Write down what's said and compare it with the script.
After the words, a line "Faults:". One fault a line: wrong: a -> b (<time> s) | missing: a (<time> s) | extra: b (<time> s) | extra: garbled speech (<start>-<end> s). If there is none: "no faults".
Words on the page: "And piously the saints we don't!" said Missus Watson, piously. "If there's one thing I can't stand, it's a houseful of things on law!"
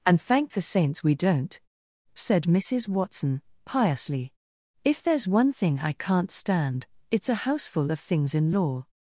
"And thank the saints we don't!" said Missus Watson, piously. "If there's one thing I can't stand, it's a houseful of things in law!"
Faults:
wrong: piously -> thank (0.2 s)
wrong: on -> in (8.3 s)